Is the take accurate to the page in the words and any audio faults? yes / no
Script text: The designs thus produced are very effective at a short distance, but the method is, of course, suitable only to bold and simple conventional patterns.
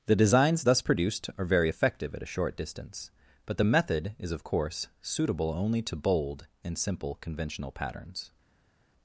yes